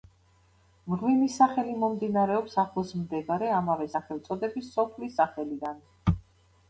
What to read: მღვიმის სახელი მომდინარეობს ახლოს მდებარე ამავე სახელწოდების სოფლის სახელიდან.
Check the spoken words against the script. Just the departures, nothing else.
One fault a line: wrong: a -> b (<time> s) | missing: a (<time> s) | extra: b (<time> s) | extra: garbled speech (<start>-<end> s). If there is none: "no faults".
no faults